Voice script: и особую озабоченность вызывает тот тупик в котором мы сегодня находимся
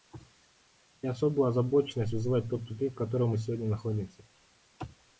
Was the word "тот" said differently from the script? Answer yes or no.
no